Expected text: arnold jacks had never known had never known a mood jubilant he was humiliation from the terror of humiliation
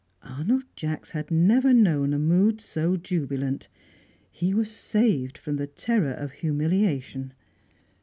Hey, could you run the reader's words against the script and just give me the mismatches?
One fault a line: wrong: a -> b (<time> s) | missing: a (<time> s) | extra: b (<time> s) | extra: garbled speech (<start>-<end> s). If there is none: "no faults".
missing: had never known (2.1 s)
extra: so (2.6 s)
wrong: humiliation -> saved (4.7 s)